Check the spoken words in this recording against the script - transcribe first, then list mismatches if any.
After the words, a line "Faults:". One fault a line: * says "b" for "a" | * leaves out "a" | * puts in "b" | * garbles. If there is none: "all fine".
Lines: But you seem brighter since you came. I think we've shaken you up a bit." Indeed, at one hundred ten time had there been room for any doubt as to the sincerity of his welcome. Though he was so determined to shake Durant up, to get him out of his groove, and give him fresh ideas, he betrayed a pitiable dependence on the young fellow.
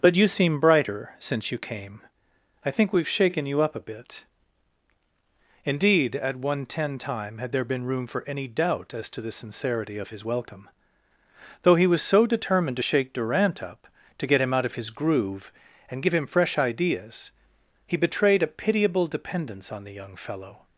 But you seem brighter since you came. I think we've shaken you up a bit." Indeed, at one ten time had there been room for any doubt as to the sincerity of his welcome. Though he was so determined to shake Durant up, to get him out of his groove, and give him fresh ideas, he betrayed a pitiable dependence on the young fellow.
Faults:
* leaves out "hundred"